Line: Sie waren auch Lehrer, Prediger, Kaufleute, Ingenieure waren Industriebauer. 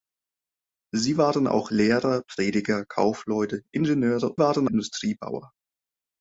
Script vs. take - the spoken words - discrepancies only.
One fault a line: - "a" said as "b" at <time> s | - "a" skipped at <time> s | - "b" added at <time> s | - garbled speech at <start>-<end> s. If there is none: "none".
none